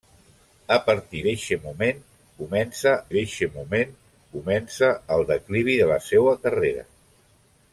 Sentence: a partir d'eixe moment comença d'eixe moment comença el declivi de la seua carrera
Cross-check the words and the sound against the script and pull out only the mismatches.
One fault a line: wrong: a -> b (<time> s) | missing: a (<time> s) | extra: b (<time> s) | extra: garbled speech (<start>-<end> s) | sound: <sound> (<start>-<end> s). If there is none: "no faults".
no faults